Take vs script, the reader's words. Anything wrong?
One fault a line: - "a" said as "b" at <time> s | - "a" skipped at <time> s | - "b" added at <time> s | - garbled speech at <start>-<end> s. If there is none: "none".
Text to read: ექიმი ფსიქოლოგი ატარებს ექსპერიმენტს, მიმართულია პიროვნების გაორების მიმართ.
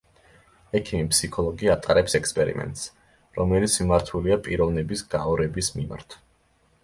- "რომელიც" added at 3.4 s